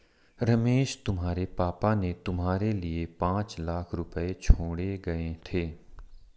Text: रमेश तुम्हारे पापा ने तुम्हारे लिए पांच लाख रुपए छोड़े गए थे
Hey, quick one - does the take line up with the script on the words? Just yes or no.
yes